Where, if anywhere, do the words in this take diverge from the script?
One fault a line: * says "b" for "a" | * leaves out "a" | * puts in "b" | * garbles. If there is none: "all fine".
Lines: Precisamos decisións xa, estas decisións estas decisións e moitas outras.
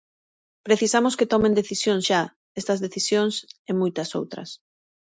* puts in "que tomen"
* leaves out "estas decisións"